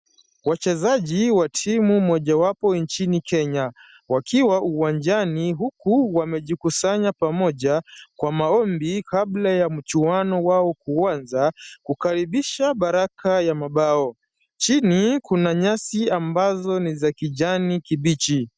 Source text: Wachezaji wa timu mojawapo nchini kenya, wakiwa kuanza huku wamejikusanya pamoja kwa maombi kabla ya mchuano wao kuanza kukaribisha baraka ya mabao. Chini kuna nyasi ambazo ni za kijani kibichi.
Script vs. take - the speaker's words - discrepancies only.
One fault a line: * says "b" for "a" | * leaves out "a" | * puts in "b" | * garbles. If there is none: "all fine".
* says "uwanjani" for "kuanza"